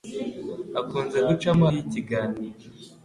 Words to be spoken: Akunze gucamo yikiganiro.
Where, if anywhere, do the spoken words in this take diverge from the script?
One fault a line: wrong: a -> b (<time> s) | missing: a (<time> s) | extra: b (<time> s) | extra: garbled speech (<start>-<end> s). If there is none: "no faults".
no faults